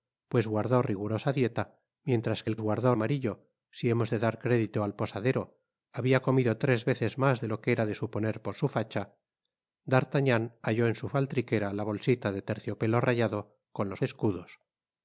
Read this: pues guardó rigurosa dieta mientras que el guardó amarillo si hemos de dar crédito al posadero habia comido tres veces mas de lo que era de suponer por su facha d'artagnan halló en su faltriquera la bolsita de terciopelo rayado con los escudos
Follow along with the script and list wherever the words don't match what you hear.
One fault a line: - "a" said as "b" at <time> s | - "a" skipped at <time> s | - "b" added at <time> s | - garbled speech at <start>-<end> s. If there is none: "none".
none